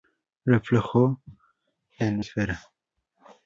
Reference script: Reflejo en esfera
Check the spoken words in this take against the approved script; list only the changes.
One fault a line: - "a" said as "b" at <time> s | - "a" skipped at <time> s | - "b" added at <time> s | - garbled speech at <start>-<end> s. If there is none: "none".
none